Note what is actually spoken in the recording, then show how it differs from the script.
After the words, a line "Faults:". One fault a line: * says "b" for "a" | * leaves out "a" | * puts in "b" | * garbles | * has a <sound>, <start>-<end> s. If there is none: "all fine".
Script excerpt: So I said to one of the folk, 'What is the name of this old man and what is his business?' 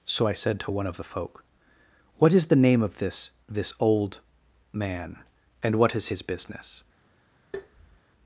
So I said to one of the folk, 'What is the name of this this old man and what is his business?'
Faults:
* puts in "this"
* has a tap, 7.5-8.0 s